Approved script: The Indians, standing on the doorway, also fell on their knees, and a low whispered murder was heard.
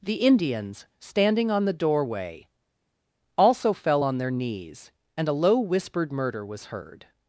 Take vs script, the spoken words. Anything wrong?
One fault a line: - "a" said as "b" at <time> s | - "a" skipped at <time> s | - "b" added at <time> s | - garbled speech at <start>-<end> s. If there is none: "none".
none